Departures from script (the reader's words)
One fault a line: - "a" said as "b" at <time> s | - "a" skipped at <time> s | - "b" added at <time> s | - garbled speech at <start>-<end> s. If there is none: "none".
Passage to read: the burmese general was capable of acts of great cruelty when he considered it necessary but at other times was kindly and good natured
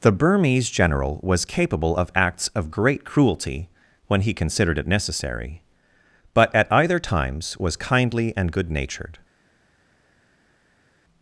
- "other" said as "either" at 6.7 s